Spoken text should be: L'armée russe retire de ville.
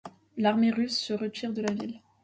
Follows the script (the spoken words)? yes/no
no